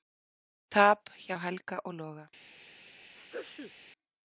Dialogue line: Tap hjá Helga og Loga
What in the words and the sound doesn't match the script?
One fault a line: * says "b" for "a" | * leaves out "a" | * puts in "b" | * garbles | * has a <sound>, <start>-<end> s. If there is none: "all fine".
* has a sneeze, 3.2-3.7 s